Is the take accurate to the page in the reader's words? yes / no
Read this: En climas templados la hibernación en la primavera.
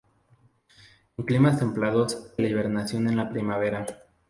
yes